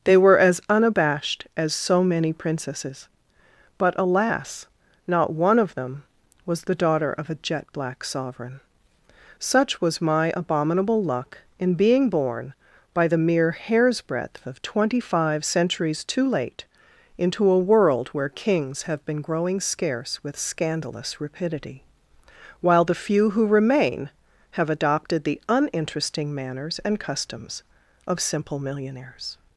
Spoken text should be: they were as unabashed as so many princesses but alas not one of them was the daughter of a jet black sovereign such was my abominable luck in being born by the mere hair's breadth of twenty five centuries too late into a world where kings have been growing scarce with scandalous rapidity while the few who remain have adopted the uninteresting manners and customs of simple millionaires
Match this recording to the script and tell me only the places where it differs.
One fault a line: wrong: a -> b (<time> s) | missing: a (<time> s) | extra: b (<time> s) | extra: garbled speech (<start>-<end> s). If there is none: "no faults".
no faults